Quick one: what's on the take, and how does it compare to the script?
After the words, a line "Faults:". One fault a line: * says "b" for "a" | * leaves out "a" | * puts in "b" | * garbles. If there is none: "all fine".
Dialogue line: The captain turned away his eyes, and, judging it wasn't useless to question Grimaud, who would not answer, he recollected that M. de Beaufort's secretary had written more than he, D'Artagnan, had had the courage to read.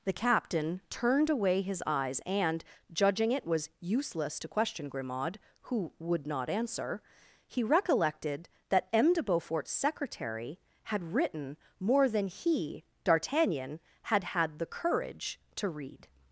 The captain turned away his eyes, and, judging it was useless to question Grimaud, who would not answer, he recollected that M. de Beaufort's secretary had written more than he, D'Artagnan, had had the courage to read.
Faults:
* says "was" for "wasn't"